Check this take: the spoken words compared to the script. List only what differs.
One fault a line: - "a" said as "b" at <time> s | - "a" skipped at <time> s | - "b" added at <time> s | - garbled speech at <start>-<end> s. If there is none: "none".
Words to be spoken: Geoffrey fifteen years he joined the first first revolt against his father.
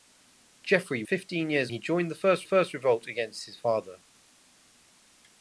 none